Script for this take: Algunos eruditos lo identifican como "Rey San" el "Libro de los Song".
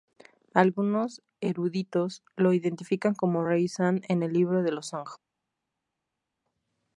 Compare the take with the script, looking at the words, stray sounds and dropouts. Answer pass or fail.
fail